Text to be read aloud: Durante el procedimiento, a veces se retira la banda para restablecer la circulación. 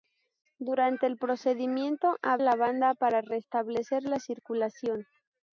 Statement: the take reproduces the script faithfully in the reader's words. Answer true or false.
false